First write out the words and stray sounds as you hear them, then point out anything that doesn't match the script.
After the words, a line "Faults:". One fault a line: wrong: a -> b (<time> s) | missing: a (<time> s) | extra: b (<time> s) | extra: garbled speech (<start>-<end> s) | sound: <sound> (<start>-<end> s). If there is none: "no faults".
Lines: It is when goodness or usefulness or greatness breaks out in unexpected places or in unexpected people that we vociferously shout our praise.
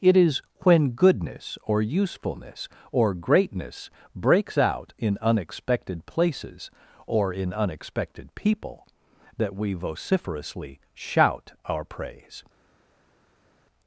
It is when goodness or usefulness or greatness breaks out in unexpected places or in unexpected people that we vociferously shout our praise.
Faults:
no faults